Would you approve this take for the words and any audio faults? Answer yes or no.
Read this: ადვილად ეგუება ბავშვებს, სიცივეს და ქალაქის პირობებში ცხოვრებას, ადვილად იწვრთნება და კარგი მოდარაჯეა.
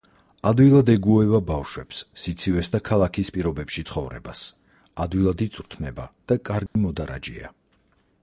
no